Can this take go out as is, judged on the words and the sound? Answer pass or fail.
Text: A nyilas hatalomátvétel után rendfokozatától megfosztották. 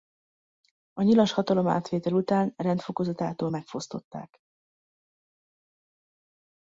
pass